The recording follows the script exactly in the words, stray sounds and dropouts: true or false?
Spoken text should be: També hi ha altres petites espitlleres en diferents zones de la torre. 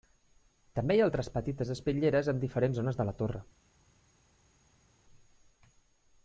true